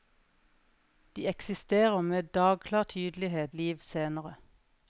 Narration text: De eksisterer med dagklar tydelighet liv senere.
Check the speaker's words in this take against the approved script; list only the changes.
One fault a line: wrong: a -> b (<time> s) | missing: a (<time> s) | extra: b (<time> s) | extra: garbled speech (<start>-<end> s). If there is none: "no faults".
no faults